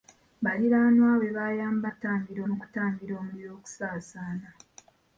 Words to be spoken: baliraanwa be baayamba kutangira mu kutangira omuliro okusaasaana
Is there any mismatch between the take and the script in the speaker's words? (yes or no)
no